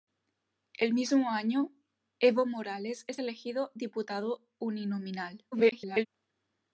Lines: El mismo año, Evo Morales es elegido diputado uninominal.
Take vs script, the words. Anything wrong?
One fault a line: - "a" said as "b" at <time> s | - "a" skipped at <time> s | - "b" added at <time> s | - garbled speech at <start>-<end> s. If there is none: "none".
- garbled speech at 5.5-6.1 s